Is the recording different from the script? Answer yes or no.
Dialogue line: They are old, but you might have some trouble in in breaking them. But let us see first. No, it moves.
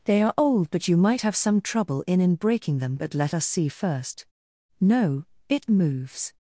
no